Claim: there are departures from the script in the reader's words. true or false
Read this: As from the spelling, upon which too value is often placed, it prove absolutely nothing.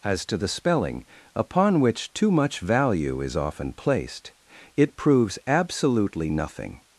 true